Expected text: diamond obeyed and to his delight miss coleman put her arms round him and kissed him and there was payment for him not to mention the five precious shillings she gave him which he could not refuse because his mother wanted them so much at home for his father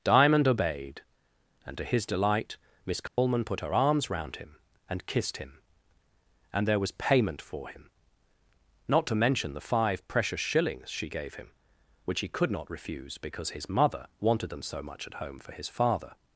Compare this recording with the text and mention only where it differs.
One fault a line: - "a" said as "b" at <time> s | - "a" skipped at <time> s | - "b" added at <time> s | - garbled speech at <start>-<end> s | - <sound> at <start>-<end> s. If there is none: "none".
- dropout at 3.1-3.2 s